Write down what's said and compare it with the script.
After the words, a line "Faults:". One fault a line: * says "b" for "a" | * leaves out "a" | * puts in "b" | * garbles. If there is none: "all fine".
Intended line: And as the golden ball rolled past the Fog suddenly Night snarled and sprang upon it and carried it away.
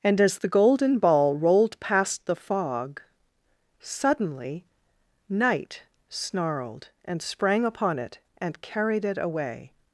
And as the golden ball rolled past the Fog suddenly Night snarled and sprang upon it and carried it away.
Faults:
all fine